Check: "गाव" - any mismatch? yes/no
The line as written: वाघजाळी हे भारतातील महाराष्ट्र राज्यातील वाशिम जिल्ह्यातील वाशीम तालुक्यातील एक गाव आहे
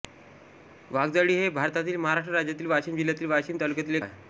yes